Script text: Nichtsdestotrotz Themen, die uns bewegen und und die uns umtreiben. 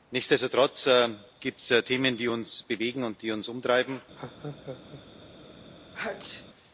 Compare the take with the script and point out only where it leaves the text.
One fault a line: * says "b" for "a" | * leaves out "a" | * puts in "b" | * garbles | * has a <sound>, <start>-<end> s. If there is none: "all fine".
* puts in "gibt es"
* leaves out "und"
* has a laugh, 4.2-5.0 s
* has a sneeze, 5.9-6.5 s